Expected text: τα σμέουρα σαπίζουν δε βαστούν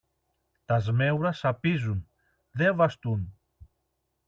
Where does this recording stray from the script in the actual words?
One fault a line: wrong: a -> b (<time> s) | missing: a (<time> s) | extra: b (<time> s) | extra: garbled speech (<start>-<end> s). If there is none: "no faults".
no faults